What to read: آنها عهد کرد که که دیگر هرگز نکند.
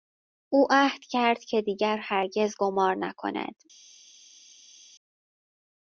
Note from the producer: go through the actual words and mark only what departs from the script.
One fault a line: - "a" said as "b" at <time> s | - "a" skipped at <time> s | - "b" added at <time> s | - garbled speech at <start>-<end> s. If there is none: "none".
- "آنها" said as "او" at 0.5 s
- "که" skipped at 1.6 s
- "قمار" added at 2.6 s